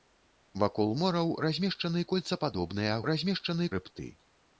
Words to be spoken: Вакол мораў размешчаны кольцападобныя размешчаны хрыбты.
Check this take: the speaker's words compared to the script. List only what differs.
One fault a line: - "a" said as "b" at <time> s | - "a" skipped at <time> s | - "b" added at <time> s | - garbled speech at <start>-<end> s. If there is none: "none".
none